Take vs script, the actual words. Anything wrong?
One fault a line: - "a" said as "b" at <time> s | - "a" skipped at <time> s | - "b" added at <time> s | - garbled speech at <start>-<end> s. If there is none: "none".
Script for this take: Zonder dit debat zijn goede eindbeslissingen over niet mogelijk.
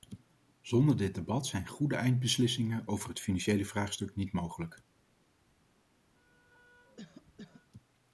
- "het financiële vraagstuk" added at 3.1 s